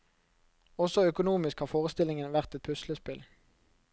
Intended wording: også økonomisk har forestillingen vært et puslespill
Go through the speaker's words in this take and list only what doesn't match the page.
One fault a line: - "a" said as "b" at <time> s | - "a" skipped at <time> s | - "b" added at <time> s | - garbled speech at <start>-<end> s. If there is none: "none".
none